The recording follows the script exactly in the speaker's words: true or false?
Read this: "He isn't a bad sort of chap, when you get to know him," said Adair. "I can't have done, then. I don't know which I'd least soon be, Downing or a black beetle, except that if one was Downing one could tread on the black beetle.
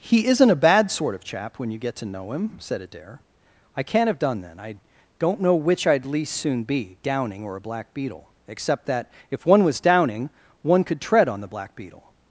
true